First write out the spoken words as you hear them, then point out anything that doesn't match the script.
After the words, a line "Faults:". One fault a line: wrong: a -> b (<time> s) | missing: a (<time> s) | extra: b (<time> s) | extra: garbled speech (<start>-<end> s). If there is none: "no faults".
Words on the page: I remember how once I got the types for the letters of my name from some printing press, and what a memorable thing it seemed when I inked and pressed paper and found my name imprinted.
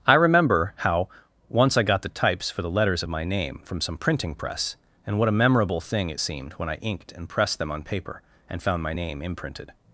I remember how once I got the types for the letters of my name from some printing press, and what a memorable thing it seemed when I inked and pressed them on paper and found my name imprinted.
Faults:
extra: them on (7.6 s)